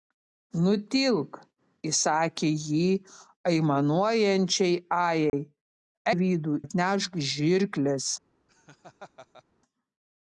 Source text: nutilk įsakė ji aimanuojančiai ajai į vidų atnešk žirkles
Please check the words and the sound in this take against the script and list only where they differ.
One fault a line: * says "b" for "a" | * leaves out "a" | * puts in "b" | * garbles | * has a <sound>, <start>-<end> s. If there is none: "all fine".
* has a dropout, 5.3-5.3 s
* has a laugh, 8.5-9.4 s